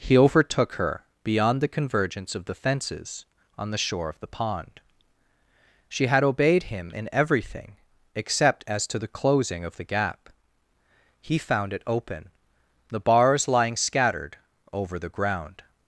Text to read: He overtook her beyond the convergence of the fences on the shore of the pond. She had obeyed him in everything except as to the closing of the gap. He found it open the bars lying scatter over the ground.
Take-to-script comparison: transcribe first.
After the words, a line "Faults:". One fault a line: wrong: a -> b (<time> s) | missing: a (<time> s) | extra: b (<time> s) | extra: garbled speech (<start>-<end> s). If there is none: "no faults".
He overtook her beyond the convergence of the fences on the shore of the pond. She had obeyed him in everything except as to the closing of the gap. He found it open the bars lying scattered over the ground.
Faults:
wrong: scatter -> scattered (13.7 s)